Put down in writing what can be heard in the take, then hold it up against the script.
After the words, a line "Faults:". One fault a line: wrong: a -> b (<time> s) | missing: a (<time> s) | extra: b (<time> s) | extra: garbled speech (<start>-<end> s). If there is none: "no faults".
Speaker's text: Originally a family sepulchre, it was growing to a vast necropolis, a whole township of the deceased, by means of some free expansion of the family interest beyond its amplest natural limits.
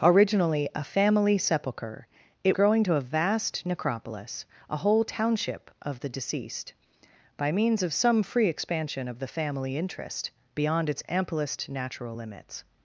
Originally a family sepulchre, it growing to a vast necropolis, a whole township of the deceased, by means of some free expansion of the family interest beyond its amplest natural limits.
Faults:
missing: was (2.5 s)